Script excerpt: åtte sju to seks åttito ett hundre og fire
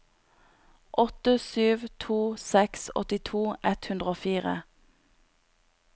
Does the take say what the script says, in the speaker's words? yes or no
yes